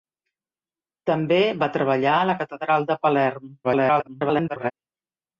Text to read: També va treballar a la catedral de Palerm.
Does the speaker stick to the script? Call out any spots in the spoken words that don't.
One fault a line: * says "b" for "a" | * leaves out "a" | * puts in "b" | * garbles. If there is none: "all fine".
* garbles